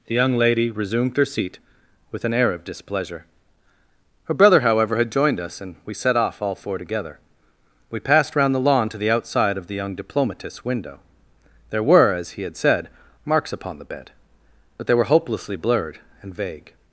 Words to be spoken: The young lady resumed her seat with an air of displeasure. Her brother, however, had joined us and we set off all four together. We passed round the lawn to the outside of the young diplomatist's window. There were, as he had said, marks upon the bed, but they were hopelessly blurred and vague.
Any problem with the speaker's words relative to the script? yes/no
no